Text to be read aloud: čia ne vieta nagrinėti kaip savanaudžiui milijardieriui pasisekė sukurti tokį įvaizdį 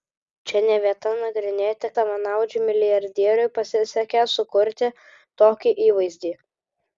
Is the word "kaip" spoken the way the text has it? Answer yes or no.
no